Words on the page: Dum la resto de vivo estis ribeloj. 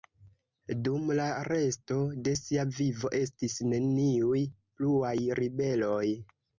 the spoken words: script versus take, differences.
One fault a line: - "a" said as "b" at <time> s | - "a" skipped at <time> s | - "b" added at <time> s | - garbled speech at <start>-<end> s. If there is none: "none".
- "sia" added at 2.4 s
- "neniuj pluaj" added at 3.7 s